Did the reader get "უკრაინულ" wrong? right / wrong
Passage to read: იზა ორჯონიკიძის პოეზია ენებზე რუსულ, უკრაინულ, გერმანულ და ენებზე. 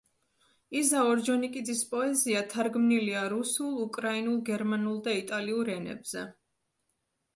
right